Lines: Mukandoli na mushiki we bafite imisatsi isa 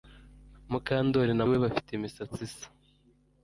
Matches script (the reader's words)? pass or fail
fail